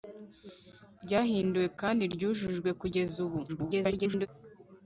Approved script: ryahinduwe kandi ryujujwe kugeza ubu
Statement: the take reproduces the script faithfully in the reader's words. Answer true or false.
false